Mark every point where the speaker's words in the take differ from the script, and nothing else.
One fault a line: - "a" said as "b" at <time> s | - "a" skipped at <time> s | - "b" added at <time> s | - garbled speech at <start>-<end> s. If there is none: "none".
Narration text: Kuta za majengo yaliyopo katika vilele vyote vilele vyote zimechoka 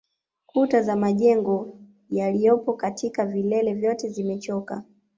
- "vilele vyote" skipped at 4.1 s